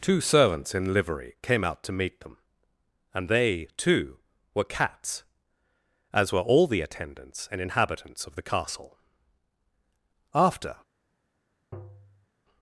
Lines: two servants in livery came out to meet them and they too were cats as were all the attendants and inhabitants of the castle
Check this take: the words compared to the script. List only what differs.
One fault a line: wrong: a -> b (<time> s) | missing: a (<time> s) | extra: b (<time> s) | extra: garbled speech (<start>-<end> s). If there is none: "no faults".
extra: after (10.3 s)